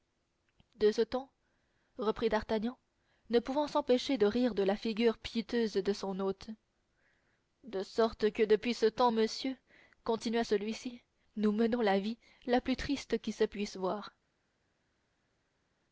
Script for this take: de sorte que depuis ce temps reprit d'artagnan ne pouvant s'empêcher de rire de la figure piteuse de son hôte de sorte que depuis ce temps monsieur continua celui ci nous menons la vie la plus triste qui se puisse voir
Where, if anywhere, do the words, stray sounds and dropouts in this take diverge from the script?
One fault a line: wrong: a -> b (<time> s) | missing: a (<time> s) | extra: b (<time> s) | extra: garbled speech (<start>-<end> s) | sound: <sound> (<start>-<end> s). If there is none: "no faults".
missing: sorte que depuis (0.9 s)